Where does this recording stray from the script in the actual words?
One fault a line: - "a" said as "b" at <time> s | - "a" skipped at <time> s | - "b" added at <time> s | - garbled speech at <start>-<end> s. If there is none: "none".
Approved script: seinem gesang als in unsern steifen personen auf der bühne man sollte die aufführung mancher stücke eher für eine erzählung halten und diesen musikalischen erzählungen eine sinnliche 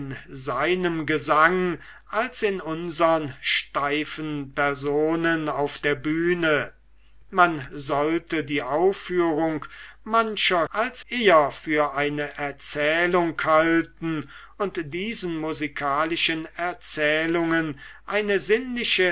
- "stücke" said as "als" at 10.7 s